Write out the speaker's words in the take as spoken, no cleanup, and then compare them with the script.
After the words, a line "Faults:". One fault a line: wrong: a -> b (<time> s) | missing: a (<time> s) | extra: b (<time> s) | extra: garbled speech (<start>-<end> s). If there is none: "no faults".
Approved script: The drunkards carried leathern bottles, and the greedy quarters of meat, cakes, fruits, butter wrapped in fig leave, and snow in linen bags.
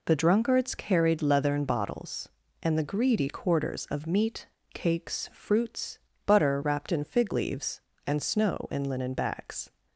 The drunkards carried leathern bottles, and the greedy quarters of meat, cakes, fruits, butter wrapped in fig leaves, and snow in linen bags.
Faults:
wrong: leave -> leaves (7.3 s)